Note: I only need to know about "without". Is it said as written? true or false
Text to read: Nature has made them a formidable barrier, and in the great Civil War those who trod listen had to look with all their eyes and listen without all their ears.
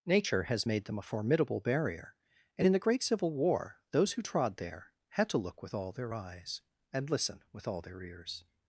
false